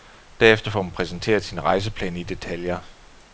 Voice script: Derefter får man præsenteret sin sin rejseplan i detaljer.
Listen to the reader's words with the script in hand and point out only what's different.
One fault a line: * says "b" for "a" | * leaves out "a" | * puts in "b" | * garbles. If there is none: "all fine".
* leaves out "sin"